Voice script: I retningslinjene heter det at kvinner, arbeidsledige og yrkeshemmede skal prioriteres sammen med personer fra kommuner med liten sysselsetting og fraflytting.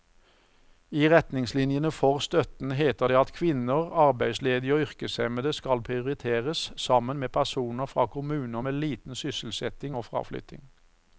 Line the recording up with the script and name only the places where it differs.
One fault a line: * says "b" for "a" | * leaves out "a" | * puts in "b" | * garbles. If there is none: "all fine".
* puts in "for støtten"